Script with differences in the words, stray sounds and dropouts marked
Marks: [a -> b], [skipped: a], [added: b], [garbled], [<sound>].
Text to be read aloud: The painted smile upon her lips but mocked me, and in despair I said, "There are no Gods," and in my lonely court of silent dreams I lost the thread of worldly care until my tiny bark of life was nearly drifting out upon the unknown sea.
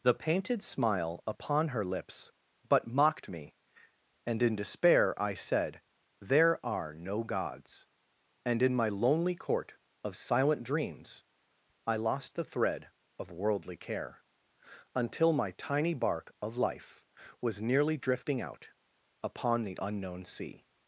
The painted smile upon her lips but mocked me, and in despair I said, "There are no Gods," and in my lonely court of silent dreams I lost the thread of worldly care until my tiny bark of life was nearly drifting out upon the unknown sea.